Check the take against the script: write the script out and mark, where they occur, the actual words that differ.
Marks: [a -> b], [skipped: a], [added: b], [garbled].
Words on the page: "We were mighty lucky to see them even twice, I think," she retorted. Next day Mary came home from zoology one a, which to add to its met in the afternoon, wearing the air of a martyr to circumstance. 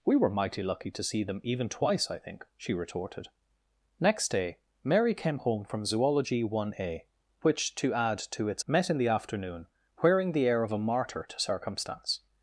"We were mighty lucky to see them even twice, I think," she retorted. Next day Mary came home from zoology one a, which to add to its met in the afternoon, wearing the air of a martyr to circumstance.